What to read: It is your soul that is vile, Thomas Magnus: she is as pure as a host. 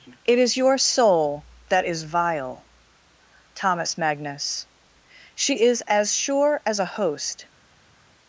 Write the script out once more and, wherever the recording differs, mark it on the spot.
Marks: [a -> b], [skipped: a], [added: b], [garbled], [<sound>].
It is your soul that is vile, Thomas Magnus: she is as [pure -> sure] as a host.